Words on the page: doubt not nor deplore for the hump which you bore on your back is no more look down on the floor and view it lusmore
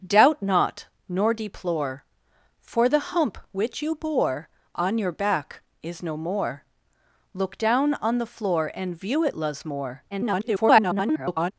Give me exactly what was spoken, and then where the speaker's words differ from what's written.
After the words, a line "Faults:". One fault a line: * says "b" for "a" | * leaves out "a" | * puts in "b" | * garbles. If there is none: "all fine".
doubt not nor deplore for the hump which you bore on your back is no more look down on the floor and view it lusmore [garbled]
Faults:
* garbles